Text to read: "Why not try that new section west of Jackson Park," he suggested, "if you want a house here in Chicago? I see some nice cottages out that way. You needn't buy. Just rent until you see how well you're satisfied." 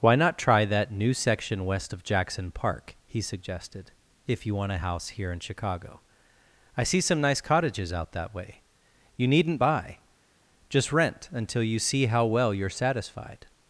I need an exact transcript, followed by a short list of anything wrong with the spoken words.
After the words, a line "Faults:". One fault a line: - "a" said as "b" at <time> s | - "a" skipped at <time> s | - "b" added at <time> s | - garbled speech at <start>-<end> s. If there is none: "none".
"Why not try that new section west of Jackson Park," he suggested, "if you want a house here in Chicago? I see some nice cottages out that way. You needn't buy. Just rent until you see how well you're satisfied."
Faults:
none